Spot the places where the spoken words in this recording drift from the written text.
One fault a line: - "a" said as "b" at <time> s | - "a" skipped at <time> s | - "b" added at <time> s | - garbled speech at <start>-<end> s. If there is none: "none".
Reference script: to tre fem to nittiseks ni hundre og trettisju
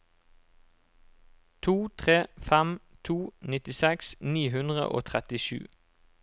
none